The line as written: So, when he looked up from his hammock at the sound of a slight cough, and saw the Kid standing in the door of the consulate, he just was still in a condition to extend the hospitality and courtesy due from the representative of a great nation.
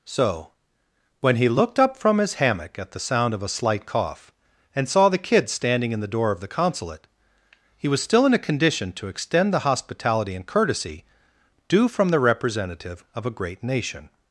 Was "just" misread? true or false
true